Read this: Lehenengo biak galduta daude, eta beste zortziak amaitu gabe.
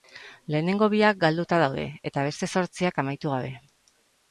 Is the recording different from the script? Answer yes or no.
no